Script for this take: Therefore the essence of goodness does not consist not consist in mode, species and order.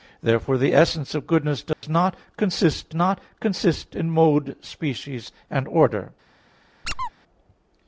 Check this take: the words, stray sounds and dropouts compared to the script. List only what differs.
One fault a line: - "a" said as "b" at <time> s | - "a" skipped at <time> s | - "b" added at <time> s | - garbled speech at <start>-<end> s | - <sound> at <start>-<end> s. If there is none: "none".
- dropout at 1.7-1.8 s
- squeak at 6.8-7.1 s